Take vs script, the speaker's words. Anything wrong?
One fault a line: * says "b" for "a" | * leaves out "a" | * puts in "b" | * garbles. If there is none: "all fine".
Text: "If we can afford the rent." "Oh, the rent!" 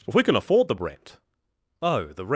all fine